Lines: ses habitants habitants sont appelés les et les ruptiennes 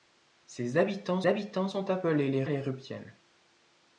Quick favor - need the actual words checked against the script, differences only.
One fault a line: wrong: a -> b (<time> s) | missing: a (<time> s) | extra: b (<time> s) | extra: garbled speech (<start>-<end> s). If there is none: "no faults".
no faults